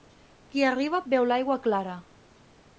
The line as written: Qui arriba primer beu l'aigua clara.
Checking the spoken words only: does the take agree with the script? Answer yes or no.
no